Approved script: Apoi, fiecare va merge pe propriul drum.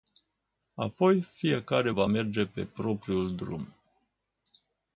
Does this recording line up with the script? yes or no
yes